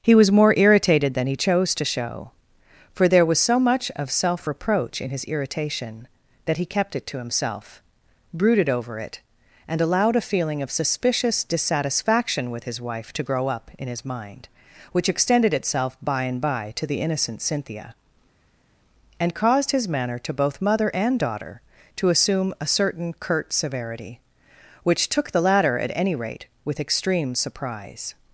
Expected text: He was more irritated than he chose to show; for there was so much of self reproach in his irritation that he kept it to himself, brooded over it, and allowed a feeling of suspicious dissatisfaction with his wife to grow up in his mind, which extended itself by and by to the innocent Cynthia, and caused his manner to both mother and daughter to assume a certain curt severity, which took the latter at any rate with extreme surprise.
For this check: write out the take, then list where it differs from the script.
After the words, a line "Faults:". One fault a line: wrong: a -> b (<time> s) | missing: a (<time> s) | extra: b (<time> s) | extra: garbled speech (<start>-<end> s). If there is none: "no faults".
He was more irritated than he chose to show; for there was so much of self reproach in his irritation that he kept it to himself, brooded over it, and allowed a feeling of suspicious dissatisfaction with his wife to grow up in his mind, which extended itself by and by to the innocent Cynthia, and caused his manner to both mother and daughter to assume a certain curt severity, which took the latter at any rate with extreme surprise.
Faults:
no faults